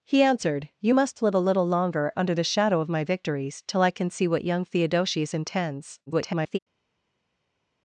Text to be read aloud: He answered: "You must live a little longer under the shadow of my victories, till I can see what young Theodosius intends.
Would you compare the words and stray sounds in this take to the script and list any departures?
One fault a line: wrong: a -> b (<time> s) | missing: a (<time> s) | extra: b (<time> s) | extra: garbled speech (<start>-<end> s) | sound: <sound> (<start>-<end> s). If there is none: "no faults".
extra: garbled speech (6.1-6.6 s)